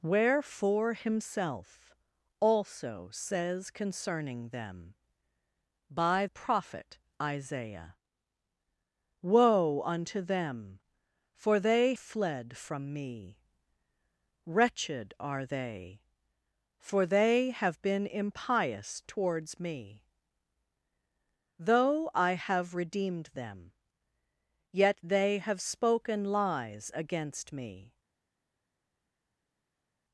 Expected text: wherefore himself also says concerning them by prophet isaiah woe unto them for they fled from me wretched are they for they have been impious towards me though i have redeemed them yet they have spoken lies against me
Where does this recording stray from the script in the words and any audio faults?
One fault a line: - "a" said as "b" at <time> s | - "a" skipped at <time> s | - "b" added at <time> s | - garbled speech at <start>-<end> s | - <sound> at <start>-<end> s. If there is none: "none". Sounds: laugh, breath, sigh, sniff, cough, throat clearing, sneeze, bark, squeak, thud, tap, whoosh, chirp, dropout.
none